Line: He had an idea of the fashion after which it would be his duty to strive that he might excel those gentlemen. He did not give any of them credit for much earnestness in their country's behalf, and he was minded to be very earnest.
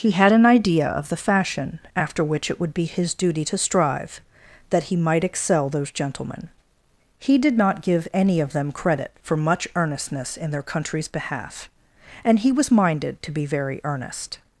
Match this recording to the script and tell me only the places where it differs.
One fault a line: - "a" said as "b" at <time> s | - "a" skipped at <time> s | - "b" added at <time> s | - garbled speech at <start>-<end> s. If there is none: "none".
none